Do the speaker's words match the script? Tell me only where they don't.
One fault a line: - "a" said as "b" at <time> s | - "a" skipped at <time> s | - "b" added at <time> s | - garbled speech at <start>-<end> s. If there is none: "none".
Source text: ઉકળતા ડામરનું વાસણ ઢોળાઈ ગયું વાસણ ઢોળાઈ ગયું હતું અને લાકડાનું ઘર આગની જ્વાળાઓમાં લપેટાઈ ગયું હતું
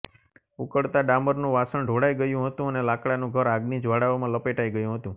- "વાસણ ઢોળાઈ ગયું" skipped at 2.5 s